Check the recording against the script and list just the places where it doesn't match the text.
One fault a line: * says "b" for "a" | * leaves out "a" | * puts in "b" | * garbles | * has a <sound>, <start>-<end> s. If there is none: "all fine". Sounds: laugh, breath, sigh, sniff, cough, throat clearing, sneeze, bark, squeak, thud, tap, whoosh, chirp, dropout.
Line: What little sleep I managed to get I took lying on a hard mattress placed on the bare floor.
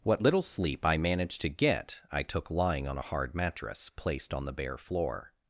all fine